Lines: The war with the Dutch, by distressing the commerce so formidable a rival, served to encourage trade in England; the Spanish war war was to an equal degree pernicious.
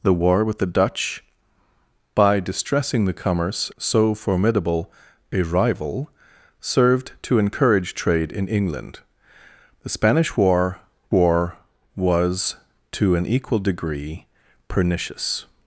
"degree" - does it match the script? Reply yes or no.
yes